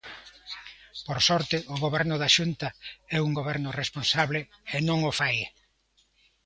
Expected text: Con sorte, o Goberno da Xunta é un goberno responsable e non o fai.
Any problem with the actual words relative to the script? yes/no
yes